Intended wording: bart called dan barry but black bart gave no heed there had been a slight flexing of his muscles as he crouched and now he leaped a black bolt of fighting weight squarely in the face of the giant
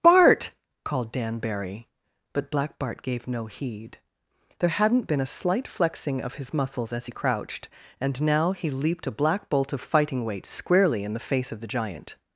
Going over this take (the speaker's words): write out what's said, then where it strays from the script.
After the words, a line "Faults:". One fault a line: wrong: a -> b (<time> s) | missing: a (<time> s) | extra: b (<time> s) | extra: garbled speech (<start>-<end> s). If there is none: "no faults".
bart called dan barry but black bart gave no heed there hadn't been a slight flexing of his muscles as he crouched and now he leaped a black bolt of fighting weight squarely in the face of the giant
Faults:
wrong: had -> hadn't (4.7 s)